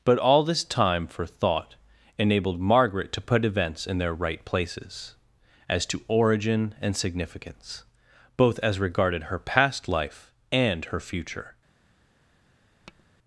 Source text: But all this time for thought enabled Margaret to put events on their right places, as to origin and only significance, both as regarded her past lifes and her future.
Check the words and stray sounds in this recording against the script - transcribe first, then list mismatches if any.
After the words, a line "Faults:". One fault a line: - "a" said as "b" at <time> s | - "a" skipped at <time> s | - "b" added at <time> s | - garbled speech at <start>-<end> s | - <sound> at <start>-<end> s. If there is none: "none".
But all this time for thought enabled Margaret to put events in their right places, as to origin and significance, both as regarded her past life and her future.
Faults:
- "on" said as "in" at 3.9 s
- "only" skipped at 7.0 s
- "lifes" said as "life" at 9.9 s
- tap at 12.9-13.0 s